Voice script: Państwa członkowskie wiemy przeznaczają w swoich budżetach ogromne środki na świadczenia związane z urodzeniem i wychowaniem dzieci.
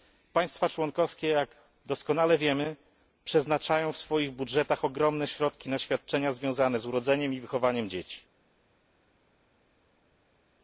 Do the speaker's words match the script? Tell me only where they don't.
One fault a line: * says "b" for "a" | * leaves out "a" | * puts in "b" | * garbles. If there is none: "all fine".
* puts in "jak doskonale"